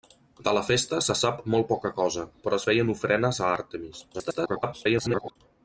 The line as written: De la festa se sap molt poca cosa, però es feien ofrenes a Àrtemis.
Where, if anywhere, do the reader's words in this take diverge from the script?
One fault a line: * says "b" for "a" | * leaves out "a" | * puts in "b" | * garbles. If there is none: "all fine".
* garbles